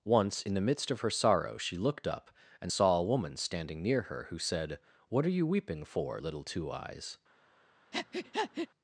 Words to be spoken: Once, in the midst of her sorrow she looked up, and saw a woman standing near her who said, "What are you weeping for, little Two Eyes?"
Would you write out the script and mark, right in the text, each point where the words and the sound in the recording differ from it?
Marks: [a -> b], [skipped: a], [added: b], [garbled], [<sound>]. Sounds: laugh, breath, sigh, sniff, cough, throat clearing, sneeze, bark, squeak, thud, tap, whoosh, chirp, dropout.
Once, in the midst of her sorrow she looked up, and saw a woman standing near her who said, "What are you weeping for, little Two Eyes?" [breath]